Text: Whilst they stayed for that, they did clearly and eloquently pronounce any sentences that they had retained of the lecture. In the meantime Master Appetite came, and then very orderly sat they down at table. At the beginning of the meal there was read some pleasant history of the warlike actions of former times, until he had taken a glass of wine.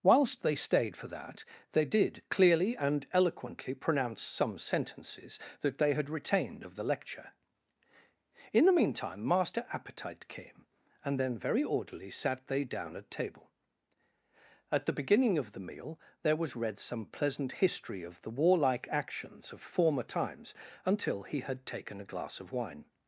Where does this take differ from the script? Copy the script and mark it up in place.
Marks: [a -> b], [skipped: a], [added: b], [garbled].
Whilst they stayed for that, they did clearly and eloquently pronounce [any -> some] sentences that they had retained of the lecture. In the meantime Master Appetite came, and then very orderly sat they down at table. At the beginning of the meal there was read some pleasant history of the warlike actions of former times, until he had taken a glass of wine.